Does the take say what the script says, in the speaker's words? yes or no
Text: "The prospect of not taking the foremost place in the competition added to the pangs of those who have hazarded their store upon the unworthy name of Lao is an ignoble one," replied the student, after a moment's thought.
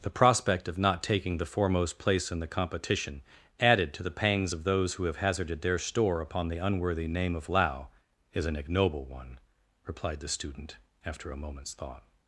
yes